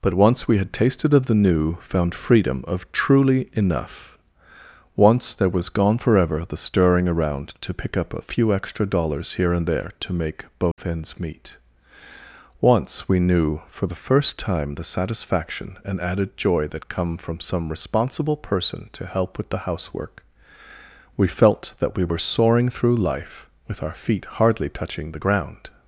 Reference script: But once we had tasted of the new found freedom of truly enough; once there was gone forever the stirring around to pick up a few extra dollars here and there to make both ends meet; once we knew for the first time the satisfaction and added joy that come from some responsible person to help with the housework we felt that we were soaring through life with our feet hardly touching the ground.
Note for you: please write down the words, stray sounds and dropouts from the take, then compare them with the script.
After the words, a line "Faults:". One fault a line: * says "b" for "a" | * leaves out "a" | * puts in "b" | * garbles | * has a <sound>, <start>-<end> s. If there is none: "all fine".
But once we had tasted of the new found freedom of truly enough; once there was gone forever the stirring around to pick up a few extra dollars here and there to make both ends meet; once we knew for the first time the satisfaction and added joy that come from some responsible person to help with the housework we felt that we were soaring through life with our feet hardly touching the ground.
Faults:
* has a dropout, 10.7-10.8 s